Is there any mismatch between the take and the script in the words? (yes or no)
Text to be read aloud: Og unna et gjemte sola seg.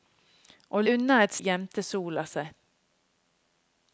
no